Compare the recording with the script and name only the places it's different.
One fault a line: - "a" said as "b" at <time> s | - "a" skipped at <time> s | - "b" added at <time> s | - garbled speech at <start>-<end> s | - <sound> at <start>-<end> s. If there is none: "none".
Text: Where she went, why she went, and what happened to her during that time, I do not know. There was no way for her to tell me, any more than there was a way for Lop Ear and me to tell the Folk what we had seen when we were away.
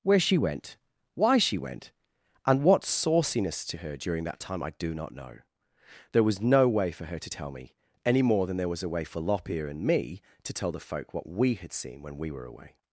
- "happened" said as "sauciness" at 2.8 s